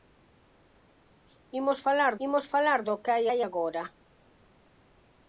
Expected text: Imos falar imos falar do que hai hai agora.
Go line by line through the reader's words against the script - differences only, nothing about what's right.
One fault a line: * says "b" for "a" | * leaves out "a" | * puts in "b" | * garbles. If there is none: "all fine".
all fine